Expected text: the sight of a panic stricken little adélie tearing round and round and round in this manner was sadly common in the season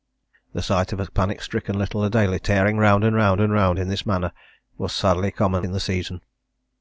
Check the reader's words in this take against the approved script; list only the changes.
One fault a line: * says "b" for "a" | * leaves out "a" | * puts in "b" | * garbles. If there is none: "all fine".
all fine